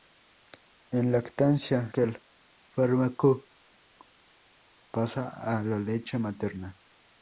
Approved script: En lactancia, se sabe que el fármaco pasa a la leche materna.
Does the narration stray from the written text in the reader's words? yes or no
yes